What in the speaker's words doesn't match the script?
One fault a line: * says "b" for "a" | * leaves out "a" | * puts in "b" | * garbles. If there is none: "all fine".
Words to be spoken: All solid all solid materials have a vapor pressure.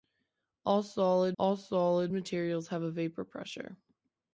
all fine